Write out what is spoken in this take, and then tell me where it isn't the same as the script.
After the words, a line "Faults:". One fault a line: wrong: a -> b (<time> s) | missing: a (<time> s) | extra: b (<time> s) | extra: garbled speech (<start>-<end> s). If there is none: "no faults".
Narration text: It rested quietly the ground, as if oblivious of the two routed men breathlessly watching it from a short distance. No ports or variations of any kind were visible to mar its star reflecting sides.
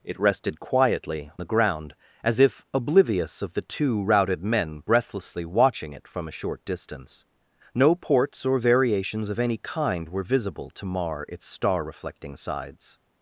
It rested quietly the ground, as if oblivious of the two routed men breathlessly watching it from a short distance. No ports or variations of any kind were visible to mar its star reflecting sides.
Faults:
no faults